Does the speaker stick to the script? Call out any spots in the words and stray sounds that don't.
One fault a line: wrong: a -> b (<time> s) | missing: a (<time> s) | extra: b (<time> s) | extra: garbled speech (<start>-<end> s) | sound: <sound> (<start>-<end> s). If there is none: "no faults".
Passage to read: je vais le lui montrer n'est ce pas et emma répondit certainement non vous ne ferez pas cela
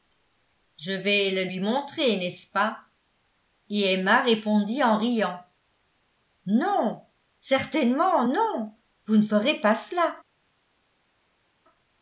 extra: en riant non (4.8 s)